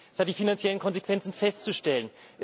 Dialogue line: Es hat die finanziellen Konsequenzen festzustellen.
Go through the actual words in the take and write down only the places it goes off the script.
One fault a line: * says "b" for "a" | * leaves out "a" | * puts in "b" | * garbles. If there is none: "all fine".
all fine